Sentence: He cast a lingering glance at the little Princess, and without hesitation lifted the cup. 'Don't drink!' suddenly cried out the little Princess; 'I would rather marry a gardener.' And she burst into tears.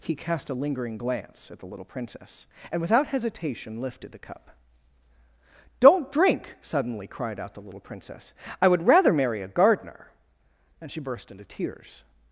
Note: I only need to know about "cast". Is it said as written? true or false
true